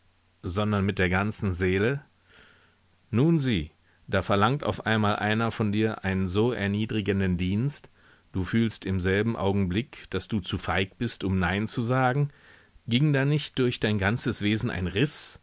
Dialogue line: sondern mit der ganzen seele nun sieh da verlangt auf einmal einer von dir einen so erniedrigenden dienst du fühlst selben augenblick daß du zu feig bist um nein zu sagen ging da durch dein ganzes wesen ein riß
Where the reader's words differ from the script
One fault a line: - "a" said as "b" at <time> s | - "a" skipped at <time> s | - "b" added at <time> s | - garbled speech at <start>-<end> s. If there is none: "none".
- "im" added at 8.9 s
- "nicht" added at 13.2 s